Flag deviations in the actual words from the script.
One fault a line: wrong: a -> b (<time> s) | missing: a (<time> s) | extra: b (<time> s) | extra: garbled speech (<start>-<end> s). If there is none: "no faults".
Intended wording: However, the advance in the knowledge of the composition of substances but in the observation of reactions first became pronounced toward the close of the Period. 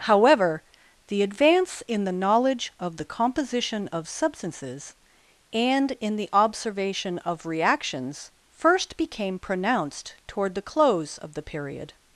wrong: but -> and (5.5 s)